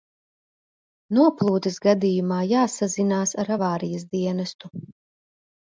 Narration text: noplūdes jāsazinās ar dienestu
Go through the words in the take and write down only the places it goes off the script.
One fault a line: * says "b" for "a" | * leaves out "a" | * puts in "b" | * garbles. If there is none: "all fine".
* puts in "gadījumā"
* puts in "avārijas"